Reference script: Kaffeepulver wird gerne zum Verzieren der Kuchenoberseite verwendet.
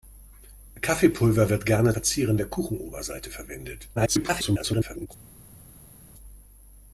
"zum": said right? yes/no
no